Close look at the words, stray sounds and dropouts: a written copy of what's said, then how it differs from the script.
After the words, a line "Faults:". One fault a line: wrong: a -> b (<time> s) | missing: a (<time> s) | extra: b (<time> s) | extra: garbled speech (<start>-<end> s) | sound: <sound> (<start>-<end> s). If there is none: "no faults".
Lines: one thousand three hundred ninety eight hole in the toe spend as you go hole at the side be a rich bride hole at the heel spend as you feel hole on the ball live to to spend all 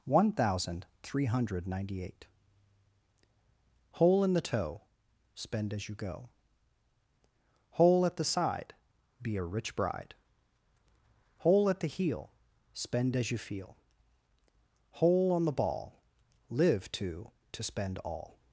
one thousand three hundred ninety eight hole in the toe spend as you go hole at the side be a rich bride hole at the heel spend as you feel hole on the ball live to to spend all
Faults:
no faults